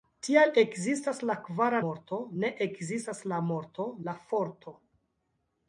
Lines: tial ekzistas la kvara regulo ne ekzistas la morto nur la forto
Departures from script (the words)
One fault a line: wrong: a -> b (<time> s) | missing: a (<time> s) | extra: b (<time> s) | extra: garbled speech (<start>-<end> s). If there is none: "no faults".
wrong: regulo -> morto (1.8 s)
missing: nur (3.9 s)